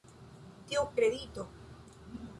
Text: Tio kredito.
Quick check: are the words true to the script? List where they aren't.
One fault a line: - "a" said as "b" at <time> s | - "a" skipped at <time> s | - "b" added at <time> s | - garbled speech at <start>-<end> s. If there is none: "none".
none